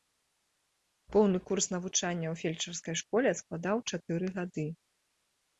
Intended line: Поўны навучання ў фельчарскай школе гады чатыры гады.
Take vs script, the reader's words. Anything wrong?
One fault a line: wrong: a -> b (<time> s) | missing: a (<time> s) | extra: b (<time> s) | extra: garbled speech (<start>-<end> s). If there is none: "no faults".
extra: курс (1.5 s)
wrong: гады -> складаў (3.4 s)